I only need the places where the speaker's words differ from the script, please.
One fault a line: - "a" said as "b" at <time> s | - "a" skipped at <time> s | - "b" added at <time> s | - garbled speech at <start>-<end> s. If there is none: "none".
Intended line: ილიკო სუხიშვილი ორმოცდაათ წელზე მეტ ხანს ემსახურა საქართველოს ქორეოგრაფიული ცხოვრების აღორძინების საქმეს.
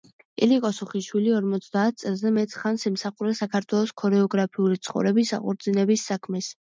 none